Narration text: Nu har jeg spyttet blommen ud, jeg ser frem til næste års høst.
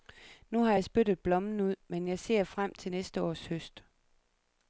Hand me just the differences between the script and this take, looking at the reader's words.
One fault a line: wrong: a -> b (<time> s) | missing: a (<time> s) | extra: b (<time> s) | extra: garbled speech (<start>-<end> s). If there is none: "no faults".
extra: men (1.9 s)